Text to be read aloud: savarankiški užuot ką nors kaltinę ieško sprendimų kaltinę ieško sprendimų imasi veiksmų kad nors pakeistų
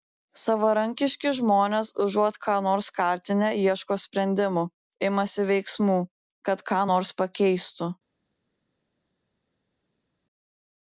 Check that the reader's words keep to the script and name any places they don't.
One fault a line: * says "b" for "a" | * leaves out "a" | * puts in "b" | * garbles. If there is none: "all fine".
* puts in "žmonės"
* leaves out "kaltinę ieško sprendimų"
* puts in "ką"